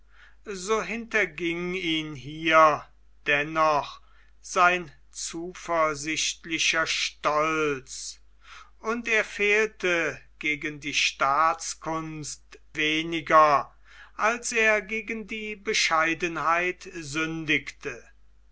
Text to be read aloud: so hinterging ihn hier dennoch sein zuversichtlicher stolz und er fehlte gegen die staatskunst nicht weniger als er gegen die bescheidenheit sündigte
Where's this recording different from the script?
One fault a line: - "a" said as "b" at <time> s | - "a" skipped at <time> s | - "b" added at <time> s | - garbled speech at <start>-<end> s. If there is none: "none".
- "nicht" skipped at 12.4 s